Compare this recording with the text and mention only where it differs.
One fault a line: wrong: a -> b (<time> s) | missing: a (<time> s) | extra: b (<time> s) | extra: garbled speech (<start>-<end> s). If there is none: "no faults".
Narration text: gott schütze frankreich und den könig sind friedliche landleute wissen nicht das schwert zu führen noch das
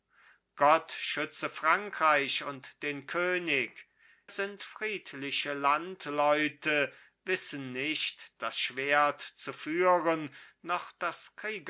no faults